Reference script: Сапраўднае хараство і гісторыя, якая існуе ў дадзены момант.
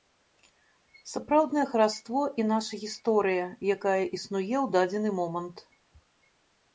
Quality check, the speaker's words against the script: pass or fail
fail